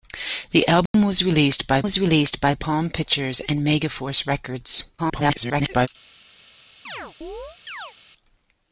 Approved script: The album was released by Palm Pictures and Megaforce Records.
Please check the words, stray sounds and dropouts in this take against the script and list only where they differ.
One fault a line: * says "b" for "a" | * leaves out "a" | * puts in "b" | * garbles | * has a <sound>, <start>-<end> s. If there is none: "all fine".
* has a dropout, 0.9-0.9 s
* puts in "was released by"
* garbles
* has a chirp, 6.8-7.9 s